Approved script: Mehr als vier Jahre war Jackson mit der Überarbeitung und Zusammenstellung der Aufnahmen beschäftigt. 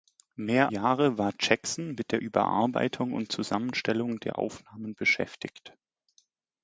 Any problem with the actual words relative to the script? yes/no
yes